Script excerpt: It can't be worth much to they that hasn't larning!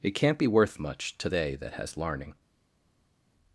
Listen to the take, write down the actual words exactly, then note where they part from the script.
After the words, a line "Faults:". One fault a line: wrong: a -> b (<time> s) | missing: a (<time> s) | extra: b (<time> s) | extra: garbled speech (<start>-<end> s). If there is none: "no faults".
It can't be worth much to they that has larning!
Faults:
wrong: hasn't -> has (1.7 s)